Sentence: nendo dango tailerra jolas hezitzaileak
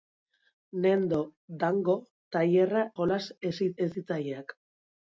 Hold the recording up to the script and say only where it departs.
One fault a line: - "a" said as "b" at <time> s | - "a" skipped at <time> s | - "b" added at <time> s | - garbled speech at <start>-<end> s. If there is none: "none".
none